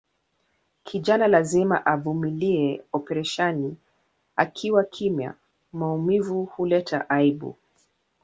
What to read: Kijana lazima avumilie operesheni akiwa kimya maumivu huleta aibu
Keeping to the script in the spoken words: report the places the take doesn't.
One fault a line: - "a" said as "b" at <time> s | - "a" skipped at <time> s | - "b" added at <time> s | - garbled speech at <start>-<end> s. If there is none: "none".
none